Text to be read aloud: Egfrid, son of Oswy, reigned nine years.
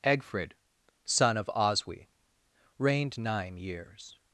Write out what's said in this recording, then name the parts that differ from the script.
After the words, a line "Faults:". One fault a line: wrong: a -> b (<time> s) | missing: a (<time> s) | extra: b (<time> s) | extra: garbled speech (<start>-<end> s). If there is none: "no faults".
Egfrid, son of Oswy, reigned nine years.
Faults:
no faults